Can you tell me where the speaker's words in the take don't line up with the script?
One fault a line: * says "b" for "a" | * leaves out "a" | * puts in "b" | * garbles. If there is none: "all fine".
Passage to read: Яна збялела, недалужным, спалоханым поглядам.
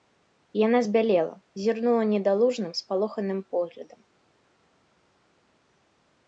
* puts in "зірнула"